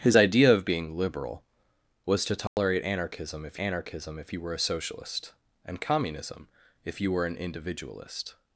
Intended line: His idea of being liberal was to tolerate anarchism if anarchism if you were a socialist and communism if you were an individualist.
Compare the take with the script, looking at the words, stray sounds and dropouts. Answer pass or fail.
fail